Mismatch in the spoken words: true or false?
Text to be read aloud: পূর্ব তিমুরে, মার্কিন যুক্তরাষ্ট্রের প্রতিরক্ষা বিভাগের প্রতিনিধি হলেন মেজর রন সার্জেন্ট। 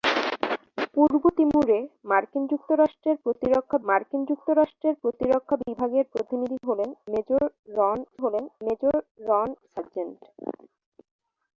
true